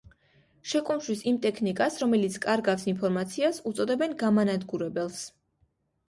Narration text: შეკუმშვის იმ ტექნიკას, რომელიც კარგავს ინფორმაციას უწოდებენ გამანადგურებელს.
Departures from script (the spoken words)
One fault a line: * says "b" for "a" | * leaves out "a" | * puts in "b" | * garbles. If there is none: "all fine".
all fine